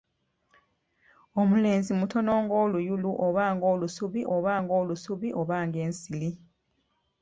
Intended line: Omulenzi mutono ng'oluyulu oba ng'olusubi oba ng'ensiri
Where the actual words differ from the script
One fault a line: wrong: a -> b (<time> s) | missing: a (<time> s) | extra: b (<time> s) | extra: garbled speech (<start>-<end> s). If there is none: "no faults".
extra: ng'olusubi oba (4.6 s)